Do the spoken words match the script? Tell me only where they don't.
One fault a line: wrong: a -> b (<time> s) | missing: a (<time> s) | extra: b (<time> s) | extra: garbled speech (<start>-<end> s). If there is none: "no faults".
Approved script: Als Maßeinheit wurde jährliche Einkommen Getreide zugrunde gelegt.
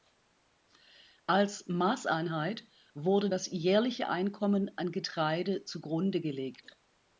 extra: das (3.3 s)
extra: an (4.8 s)